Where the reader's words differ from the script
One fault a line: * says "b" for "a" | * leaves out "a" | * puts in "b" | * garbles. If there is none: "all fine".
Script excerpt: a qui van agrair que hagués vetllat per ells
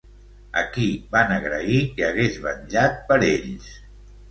all fine